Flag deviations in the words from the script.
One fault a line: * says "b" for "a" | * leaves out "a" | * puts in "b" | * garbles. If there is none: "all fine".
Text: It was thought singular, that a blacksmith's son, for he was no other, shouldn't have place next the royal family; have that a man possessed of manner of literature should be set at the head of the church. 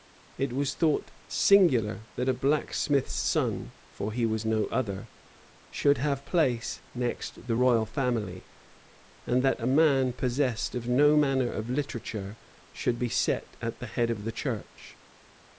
* says "should" for "shouldn't"
* says "and" for "have"
* puts in "no"